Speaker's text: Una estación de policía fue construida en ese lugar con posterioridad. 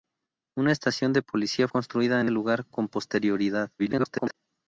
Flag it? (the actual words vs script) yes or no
yes